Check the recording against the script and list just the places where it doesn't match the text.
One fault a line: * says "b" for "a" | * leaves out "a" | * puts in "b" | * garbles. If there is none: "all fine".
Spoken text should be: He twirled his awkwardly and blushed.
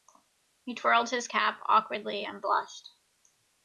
* puts in "cap"